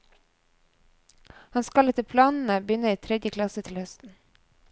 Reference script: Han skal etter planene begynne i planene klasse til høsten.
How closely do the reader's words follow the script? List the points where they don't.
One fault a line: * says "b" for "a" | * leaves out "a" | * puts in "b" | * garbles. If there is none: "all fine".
* says "tredje" for "planene"